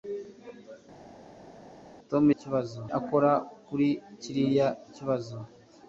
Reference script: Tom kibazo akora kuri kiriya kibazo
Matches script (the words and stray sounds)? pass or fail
pass